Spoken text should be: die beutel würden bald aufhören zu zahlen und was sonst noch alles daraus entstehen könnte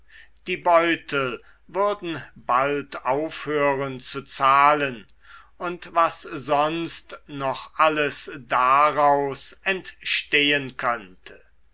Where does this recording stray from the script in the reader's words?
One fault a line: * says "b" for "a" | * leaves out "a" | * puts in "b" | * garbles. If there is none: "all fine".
all fine